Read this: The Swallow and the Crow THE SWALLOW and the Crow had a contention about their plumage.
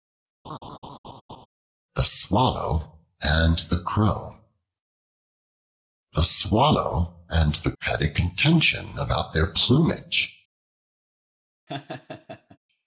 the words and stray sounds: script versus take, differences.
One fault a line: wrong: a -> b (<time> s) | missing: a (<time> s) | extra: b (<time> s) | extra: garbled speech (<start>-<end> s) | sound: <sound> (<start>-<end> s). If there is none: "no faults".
sound: laugh (0.4-1.5 s)
missing: Crow (7.7 s)
sound: laugh (11.7-12.6 s)